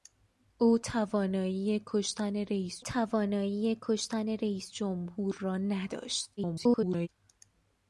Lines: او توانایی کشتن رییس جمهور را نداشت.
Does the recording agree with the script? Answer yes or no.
no